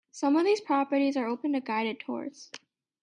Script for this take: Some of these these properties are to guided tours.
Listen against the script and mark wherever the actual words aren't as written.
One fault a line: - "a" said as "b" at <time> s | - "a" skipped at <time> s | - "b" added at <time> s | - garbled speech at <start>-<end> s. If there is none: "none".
- "these" skipped at 0.6 s
- "open" added at 1.3 s